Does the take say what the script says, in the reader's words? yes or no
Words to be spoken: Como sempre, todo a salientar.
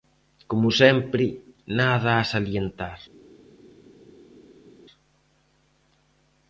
no